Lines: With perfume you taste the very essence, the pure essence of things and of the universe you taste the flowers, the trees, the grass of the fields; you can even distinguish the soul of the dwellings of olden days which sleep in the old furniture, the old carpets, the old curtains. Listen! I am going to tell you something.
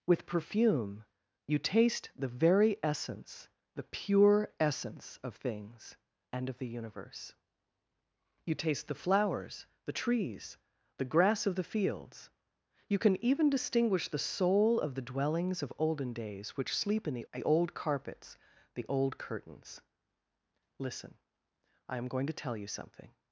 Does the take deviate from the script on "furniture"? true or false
true